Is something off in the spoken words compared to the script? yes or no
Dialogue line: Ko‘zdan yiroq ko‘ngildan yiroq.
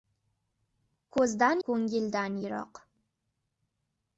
yes